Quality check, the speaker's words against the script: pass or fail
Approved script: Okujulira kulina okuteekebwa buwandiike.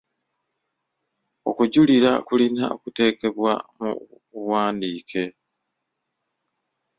fail